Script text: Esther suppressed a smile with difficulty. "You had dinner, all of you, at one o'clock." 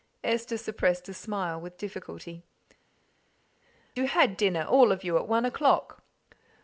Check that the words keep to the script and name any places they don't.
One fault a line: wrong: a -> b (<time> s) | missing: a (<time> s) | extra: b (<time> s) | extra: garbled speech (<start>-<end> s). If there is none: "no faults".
no faults